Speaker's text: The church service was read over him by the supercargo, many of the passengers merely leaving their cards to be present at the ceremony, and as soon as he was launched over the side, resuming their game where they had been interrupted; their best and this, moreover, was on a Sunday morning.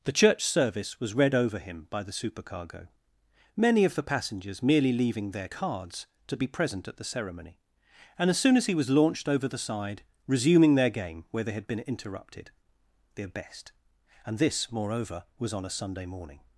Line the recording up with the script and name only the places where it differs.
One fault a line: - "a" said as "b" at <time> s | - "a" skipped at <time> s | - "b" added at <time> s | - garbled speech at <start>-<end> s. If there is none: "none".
none